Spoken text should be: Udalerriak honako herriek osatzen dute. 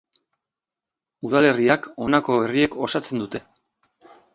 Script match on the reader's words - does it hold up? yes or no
yes